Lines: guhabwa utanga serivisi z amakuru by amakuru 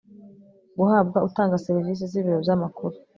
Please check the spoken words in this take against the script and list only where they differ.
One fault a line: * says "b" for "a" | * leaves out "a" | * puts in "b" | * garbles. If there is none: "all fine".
* says "ibiro" for "amakuru"